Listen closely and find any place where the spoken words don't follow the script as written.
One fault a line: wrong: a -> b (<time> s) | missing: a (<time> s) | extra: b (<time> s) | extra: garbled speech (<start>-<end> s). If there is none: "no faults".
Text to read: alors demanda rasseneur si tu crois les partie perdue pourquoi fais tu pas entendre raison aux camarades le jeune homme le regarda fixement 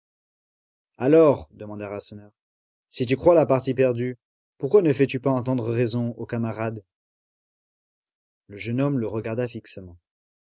wrong: les -> la (3.4 s)
extra: ne (4.8 s)